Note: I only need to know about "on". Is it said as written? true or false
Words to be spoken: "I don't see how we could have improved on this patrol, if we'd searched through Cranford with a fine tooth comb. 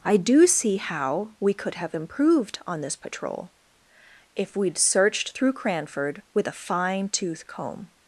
true